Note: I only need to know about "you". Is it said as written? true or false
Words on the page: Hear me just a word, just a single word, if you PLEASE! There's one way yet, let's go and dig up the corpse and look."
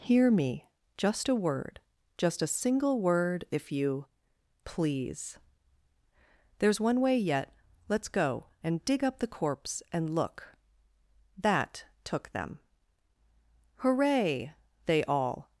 true